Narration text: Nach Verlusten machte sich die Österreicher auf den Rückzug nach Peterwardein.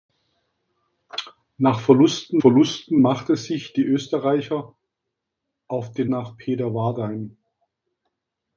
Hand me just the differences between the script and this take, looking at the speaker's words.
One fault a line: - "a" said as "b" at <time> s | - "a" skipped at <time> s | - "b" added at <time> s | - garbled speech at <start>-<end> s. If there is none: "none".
- "Verlusten" added at 2.3 s
- "Rückzug" skipped at 6.1 s